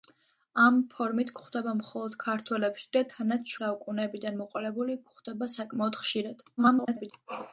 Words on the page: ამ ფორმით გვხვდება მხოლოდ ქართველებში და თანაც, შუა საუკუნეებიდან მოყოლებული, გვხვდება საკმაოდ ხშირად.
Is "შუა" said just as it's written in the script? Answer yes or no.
no